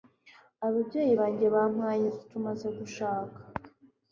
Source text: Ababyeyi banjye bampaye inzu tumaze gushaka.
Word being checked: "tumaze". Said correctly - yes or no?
yes